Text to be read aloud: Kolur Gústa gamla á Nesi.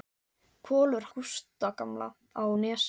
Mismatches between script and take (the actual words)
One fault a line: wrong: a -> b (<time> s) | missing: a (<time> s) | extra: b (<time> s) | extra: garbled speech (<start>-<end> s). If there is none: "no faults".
no faults